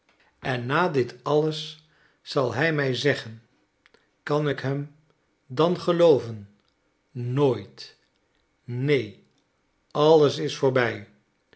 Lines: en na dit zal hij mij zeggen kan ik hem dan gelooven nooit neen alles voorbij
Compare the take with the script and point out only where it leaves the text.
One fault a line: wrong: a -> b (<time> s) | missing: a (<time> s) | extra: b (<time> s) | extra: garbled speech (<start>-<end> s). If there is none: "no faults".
extra: alles (1.2 s)
extra: is (10.4 s)